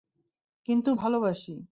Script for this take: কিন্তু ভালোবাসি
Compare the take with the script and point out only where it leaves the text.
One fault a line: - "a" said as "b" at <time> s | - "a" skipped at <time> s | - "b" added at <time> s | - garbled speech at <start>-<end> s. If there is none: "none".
none